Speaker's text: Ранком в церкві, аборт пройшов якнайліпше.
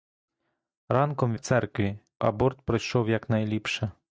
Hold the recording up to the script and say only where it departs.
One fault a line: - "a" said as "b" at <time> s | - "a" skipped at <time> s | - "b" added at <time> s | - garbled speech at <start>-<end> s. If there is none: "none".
none